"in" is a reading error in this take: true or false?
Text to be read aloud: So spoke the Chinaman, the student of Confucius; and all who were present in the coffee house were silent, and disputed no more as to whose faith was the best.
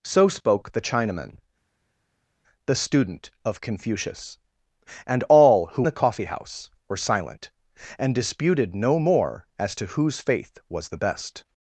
true